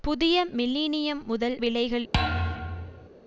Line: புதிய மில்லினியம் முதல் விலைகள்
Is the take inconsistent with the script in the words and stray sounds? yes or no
yes